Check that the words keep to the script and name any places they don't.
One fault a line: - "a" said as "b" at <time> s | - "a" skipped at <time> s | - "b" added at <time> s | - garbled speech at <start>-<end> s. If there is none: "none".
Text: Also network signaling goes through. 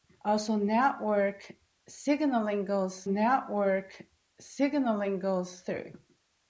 - "network signaling goes" added at 3.0 s